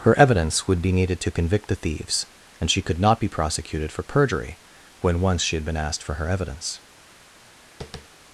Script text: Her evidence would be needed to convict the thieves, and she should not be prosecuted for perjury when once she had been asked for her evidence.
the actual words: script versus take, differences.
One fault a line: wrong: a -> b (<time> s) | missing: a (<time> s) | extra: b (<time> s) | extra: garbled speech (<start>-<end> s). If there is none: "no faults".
wrong: should -> could (2.8 s)